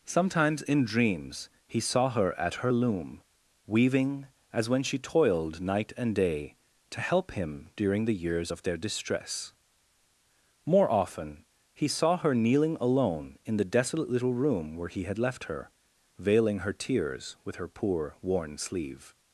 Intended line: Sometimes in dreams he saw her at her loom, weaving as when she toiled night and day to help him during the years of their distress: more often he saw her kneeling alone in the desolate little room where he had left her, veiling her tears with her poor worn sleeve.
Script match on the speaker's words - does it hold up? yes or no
yes